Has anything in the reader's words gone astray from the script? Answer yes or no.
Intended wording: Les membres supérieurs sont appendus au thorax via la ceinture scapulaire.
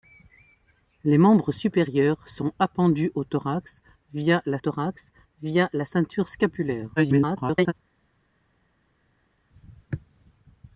yes